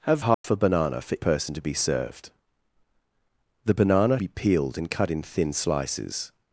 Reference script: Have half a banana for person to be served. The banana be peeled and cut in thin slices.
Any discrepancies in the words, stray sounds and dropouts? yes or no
yes